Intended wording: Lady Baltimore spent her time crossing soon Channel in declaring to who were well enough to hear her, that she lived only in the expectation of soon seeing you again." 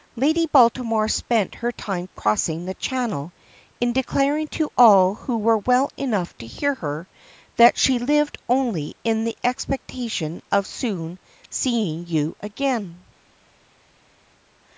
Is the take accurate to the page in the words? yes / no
no